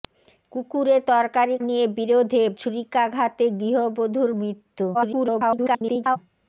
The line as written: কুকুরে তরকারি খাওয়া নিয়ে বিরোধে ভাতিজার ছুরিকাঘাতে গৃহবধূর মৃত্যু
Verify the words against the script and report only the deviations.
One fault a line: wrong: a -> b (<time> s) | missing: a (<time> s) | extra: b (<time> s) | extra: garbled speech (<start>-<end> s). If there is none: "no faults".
missing: খাওয়া (1.6 s)
missing: ভাতিজার (2.4 s)
extra: garbled speech (4.9-6.2 s)